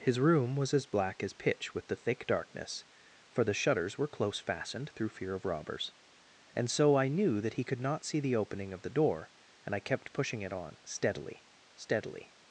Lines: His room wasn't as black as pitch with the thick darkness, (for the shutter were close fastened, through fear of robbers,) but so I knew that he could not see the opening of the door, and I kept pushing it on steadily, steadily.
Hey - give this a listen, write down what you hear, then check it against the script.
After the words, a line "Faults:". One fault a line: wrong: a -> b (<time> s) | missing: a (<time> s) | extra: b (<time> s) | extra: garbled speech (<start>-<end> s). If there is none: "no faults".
His room was as black as pitch with the thick darkness, (for the shutters were close fastened, through fear of robbers,) and so I knew that he could not see the opening of the door, and I kept pushing it on steadily, steadily.
Faults:
wrong: wasn't -> was (0.6 s)
wrong: shutter -> shutters (3.5 s)
wrong: but -> and (6.5 s)